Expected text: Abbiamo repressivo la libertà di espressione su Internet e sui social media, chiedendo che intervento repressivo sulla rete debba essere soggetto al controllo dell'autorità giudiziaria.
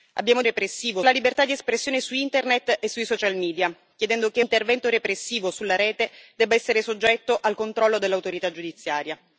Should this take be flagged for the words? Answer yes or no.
no